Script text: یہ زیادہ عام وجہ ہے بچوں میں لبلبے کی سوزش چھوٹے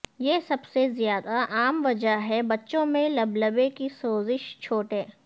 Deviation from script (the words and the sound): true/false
true